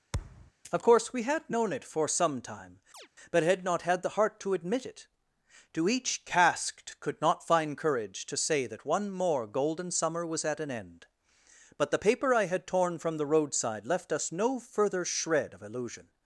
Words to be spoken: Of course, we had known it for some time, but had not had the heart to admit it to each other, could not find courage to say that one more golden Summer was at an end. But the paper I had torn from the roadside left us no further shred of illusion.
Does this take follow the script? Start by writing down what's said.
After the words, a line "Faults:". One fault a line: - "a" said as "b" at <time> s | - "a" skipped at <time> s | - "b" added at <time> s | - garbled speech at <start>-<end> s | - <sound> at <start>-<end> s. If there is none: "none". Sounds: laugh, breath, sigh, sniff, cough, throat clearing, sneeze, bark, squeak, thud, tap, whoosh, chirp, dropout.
Of course, we had known it for some time, but had not had the heart to admit it to each casked, could not find courage to say that one more golden Summer was at an end. But the paper I had torn from the roadside left us no further shred of illusion.
Faults:
- thud at 0.1-0.5 s
- chirp at 2.9-3.1 s
- "other" said as "casked" at 6.2 s